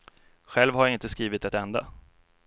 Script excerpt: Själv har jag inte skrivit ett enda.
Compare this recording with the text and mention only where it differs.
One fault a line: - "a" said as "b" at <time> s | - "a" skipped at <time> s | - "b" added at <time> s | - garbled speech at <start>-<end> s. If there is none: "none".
none